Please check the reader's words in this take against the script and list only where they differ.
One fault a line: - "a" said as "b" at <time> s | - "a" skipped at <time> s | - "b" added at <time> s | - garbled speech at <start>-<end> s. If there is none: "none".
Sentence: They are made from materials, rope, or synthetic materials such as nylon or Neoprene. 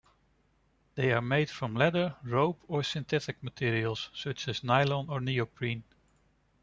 - "materials" said as "leather" at 1.8 s